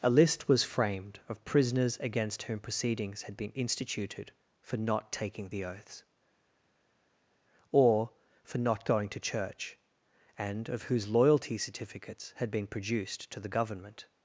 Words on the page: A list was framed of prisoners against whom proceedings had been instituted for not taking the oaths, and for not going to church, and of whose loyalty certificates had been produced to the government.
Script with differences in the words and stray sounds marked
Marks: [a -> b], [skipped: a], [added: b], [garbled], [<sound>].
A list was framed of prisoners against whom proceedings had been instituted for not taking the oaths, [and -> or] for not going to church, and of whose loyalty certificates had been produced to the government.